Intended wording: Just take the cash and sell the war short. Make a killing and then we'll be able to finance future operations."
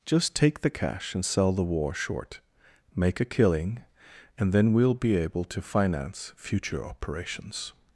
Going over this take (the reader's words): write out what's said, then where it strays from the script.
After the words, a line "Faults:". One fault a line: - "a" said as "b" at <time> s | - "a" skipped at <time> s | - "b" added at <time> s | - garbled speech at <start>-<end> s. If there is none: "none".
Just take the cash and sell the war short. Make a killing and then we'll be able to finance future operations."
Faults:
none